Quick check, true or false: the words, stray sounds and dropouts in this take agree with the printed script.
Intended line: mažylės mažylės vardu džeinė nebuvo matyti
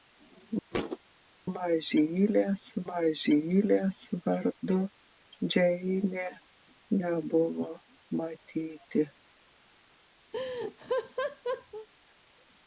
false